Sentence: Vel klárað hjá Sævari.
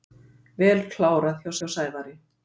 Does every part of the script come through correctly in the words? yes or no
no